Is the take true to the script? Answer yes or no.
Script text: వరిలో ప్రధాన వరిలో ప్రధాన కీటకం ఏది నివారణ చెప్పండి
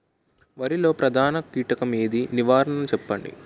no